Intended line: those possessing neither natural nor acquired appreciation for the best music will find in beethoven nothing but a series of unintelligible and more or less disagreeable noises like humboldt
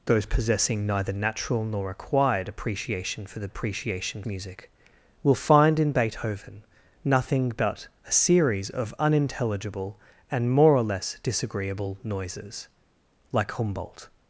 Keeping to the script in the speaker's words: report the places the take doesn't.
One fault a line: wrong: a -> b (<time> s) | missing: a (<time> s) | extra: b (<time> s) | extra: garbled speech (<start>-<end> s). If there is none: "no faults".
wrong: best -> appreciation (3.5 s)